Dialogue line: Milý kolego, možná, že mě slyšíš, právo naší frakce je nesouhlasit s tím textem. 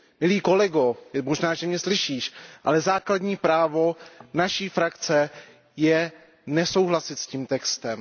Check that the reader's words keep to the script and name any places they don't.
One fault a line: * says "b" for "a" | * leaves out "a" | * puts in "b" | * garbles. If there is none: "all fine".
* puts in "ale základní"